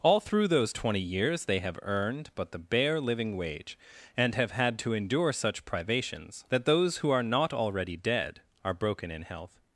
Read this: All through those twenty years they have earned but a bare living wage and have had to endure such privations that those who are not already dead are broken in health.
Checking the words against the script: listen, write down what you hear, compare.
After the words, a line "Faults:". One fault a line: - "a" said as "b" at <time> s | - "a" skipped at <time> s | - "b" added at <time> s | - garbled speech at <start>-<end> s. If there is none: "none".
All through those twenty years they have earned but the bare living wage and have had to endure such privations that those who are not already dead are broken in health.
Faults:
- "a" said as "the" at 2.5 s